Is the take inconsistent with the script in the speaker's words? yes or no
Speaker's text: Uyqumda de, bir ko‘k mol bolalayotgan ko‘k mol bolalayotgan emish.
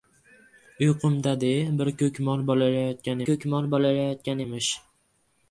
no